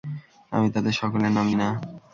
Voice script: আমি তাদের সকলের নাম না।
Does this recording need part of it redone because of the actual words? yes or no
no